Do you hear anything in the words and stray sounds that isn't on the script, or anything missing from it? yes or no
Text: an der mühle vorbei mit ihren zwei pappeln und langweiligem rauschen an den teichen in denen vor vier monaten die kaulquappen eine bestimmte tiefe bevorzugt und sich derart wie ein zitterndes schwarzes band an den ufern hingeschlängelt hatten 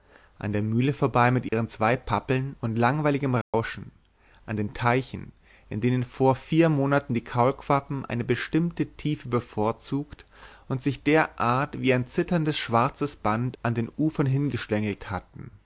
yes